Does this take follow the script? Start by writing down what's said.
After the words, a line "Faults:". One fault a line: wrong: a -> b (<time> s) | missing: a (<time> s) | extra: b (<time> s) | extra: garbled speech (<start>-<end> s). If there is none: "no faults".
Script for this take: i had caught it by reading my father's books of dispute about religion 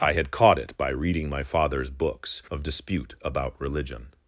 i had caught it by reading my father's books of dispute about religion
Faults:
no faults